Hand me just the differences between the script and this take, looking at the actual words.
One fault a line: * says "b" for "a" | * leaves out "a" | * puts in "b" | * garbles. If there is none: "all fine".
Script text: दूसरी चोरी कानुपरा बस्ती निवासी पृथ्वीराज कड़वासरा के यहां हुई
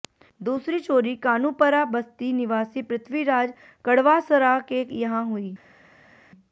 all fine